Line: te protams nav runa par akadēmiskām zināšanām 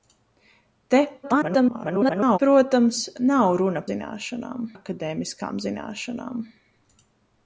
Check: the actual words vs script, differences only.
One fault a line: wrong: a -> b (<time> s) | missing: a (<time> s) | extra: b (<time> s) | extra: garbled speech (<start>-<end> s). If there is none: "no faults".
extra: garbled speech (1.2-2.4 s)
wrong: par -> zināšanām (3.9 s)